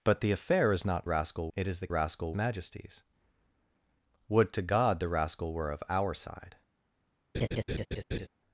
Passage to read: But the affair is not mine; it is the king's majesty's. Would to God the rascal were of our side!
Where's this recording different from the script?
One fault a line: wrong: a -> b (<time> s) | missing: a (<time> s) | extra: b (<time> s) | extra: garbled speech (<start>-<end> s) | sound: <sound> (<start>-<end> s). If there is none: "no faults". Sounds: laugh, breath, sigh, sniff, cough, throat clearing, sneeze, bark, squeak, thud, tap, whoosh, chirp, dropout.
wrong: mine -> rascal (1.0 s)
wrong: king's -> rascal (1.9 s)
sound: laugh (7.3-8.3 s)